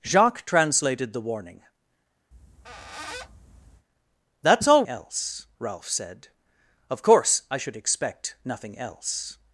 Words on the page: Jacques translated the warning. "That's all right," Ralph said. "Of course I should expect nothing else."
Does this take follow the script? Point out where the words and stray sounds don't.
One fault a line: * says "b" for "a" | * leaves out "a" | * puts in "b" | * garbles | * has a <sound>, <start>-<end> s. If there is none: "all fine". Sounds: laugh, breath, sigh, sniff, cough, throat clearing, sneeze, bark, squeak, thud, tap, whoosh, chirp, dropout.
* has a squeak, 2.3-3.9 s
* says "else" for "right"